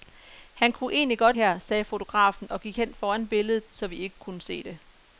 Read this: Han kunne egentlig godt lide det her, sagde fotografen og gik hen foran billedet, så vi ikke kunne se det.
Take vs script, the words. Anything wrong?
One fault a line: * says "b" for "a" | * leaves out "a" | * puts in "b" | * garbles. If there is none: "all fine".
* leaves out "lide det"